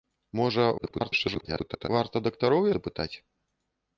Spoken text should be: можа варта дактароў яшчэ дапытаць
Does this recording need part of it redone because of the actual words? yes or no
yes